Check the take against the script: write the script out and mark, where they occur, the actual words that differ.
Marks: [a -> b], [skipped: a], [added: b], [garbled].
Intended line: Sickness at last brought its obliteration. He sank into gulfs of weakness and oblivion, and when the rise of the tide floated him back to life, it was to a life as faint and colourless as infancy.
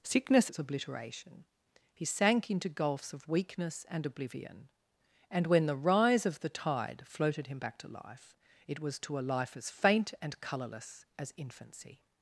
Sickness [skipped: at last brought] its obliteration. He sank into gulfs of weakness and oblivion, and when the rise of the tide floated him back to life, it was to a life as faint and colourless as infancy.